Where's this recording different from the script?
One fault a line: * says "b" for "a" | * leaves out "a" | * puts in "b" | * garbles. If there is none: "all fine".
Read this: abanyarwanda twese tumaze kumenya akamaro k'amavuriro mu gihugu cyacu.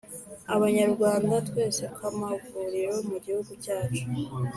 * leaves out "tumaze kumenya akamaro"